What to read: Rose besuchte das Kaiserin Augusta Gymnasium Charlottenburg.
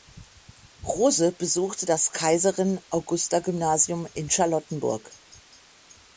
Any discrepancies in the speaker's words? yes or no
yes